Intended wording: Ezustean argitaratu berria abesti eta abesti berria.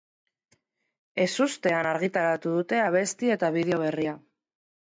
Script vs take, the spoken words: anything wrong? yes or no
yes